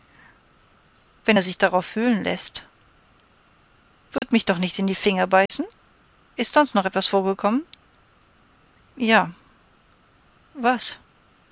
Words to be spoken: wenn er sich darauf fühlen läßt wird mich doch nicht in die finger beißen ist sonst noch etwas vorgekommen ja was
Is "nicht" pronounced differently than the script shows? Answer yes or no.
no